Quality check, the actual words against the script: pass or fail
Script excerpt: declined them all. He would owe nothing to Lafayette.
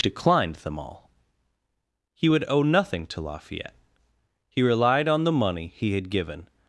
fail